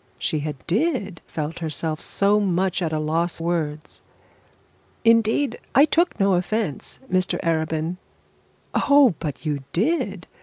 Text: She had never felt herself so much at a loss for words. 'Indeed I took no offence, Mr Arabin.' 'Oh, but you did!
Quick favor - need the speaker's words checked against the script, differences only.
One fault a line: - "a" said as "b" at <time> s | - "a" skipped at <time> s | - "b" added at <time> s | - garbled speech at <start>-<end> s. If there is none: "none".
- "never" said as "did" at 0.7 s
- "for" skipped at 3.4 s